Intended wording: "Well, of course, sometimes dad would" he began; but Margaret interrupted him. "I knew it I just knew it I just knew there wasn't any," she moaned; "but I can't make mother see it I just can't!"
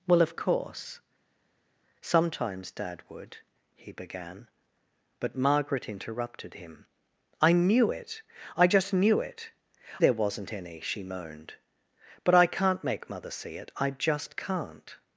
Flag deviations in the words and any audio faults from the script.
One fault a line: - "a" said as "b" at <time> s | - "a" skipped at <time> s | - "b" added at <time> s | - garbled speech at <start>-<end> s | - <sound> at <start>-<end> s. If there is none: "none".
- "I just knew" skipped at 9.5 s